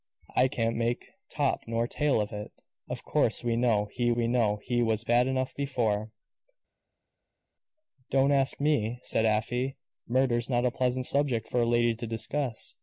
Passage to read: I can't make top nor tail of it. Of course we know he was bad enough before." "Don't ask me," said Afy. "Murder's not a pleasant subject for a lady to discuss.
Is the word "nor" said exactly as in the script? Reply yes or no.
yes